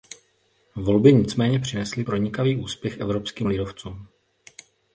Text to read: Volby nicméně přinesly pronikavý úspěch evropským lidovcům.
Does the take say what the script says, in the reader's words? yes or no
yes